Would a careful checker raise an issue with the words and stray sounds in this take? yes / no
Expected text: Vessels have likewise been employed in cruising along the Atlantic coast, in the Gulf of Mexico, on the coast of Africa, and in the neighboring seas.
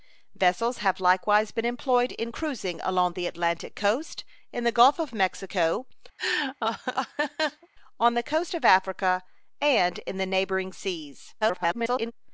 yes